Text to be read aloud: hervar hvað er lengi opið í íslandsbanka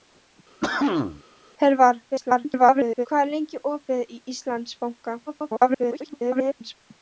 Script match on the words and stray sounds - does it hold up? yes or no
no